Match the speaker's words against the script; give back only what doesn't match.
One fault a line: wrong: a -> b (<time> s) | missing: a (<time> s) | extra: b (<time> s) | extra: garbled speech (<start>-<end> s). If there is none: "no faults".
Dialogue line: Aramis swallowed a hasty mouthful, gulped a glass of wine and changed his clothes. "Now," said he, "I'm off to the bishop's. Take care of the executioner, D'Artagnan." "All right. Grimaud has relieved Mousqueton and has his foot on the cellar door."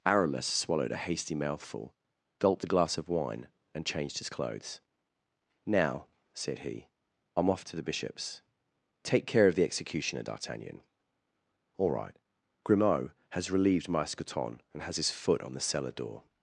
no faults